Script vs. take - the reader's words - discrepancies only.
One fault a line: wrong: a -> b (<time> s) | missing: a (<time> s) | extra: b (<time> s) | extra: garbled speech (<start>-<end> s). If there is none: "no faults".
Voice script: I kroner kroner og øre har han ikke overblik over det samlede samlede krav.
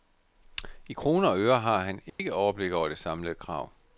missing: kroner (1.3 s)
missing: samlede (3.4 s)